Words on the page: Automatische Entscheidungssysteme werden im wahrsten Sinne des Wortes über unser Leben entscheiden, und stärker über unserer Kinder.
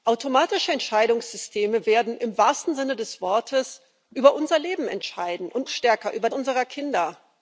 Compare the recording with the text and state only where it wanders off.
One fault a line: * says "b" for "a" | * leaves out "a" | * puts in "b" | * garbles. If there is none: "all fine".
all fine